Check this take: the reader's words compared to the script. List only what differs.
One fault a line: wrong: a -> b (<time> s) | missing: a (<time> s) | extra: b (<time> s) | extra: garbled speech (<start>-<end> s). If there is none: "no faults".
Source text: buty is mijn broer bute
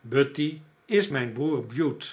no faults